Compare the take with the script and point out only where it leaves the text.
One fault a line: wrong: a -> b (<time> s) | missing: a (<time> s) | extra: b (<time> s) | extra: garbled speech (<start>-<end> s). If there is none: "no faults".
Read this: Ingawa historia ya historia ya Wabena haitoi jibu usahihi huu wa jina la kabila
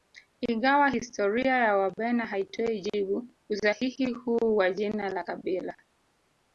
missing: historia ya (1.8 s)